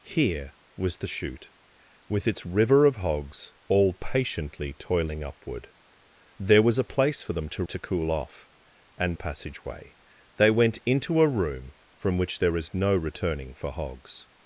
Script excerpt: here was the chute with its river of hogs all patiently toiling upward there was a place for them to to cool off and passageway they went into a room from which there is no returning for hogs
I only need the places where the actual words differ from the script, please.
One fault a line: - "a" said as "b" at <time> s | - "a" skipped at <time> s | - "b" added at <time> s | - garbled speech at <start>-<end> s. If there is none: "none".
none